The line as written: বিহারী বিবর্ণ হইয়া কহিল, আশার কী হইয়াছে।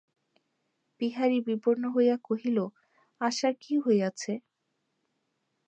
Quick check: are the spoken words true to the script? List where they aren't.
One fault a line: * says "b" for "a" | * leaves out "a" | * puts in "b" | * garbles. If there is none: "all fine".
all fine